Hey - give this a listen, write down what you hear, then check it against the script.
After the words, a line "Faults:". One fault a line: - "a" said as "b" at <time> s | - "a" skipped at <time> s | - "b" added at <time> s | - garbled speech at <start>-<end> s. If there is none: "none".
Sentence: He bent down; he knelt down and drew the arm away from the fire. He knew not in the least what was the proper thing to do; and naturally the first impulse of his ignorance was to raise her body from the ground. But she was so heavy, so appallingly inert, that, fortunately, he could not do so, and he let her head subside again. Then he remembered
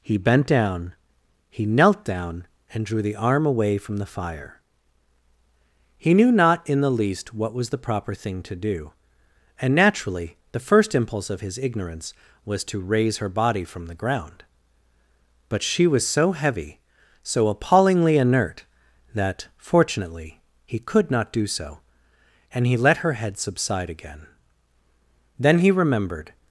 He bent down; he knelt down and drew the arm away from the fire. He knew not in the least what was the proper thing to do; and naturally the first impulse of his ignorance was to raise her body from the ground. But she was so heavy, so appallingly inert, that, fortunately, he could not do so, and he let her head subside again. Then he remembered
Faults:
none